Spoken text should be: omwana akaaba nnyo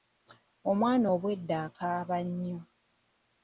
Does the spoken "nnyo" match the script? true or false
true